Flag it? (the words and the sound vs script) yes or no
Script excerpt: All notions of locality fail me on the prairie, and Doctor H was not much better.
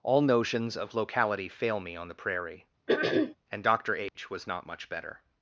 yes